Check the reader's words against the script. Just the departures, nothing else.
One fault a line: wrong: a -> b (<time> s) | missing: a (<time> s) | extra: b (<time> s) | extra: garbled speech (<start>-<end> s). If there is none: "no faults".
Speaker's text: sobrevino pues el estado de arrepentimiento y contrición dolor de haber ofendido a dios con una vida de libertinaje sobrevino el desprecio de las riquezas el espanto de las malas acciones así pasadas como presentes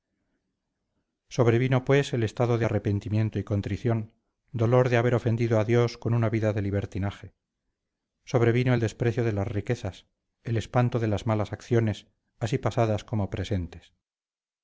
no faults